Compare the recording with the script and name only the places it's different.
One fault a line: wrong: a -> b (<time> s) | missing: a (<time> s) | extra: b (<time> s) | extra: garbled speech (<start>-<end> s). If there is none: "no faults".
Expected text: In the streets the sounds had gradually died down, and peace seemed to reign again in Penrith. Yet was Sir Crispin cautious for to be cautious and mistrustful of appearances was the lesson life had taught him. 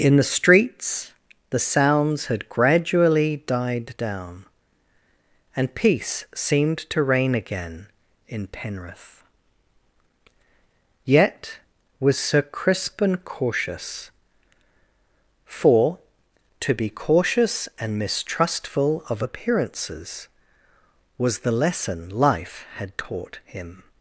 no faults